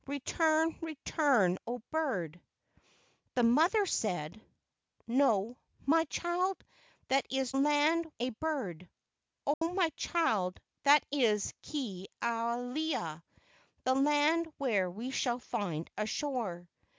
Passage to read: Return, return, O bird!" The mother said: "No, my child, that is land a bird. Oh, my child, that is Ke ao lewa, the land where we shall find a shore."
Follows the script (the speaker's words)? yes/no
yes